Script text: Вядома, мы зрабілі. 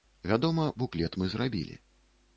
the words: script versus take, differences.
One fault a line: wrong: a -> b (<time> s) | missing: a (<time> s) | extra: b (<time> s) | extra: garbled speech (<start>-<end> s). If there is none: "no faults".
extra: буклет (0.8 s)